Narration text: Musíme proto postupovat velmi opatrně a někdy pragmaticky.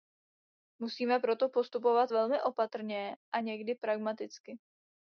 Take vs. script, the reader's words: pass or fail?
pass